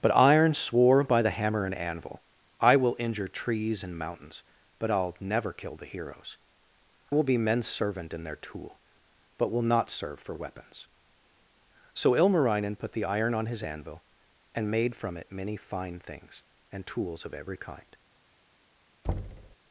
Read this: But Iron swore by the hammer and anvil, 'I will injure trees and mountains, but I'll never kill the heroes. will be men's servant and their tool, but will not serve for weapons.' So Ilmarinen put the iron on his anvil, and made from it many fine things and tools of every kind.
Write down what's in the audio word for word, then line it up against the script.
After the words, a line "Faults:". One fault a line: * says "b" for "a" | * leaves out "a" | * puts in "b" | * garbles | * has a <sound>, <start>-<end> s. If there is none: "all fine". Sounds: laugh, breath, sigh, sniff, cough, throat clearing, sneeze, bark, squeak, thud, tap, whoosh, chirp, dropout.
But Iron swore by the hammer and anvil, 'I will injure trees and mountains, but I'll never kill the heroes. will be men's servant and their tool, but will not serve for weapons.' So Ilmarinen put the iron on his anvil, and made from it many fine things and tools of every kind.
Faults:
* has a thud, 19.0-19.6 s